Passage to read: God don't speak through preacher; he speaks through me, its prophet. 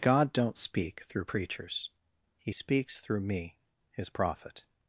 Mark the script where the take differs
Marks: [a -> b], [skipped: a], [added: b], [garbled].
God don't speak through [preacher; -> preachers] he speaks through me, [its -> his] prophet.